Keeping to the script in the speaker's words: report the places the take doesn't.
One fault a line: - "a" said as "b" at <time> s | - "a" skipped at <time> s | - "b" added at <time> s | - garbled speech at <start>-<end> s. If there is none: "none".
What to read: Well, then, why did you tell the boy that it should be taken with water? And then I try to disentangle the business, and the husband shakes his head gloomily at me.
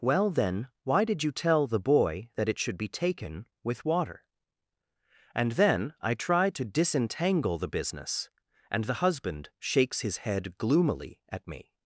none